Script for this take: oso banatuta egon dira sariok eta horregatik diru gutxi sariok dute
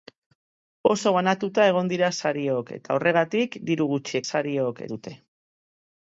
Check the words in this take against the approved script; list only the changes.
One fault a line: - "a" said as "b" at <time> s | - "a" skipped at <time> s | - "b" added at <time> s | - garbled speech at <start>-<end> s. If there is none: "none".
none